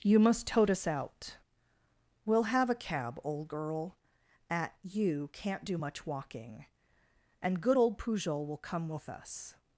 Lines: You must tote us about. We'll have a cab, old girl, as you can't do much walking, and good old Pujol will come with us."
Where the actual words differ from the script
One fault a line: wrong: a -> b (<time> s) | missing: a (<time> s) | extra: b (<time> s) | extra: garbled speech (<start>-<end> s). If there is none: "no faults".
wrong: about -> out (0.9 s)
wrong: as -> at (4.5 s)